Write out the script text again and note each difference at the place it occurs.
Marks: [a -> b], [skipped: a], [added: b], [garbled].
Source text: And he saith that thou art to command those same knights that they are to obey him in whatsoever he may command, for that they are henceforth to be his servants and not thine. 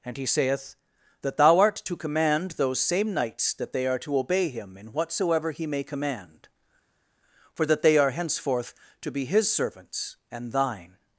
And he saith that thou art to command those same knights that they are to obey him in whatsoever he may command, for that they are henceforth to be his servants and [skipped: not] thine.